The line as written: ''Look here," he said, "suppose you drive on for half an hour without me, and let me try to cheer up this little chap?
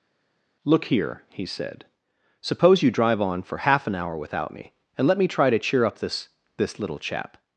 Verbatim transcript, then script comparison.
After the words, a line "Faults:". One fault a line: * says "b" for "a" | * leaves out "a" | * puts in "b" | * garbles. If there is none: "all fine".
''Look here," he said, "suppose you drive on for half an hour without me, and let me try to cheer up this this little chap?
Faults:
* puts in "this"